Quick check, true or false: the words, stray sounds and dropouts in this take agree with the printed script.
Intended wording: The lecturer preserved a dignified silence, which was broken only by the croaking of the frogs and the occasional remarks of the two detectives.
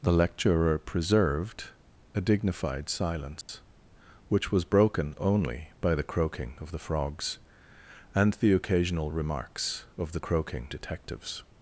false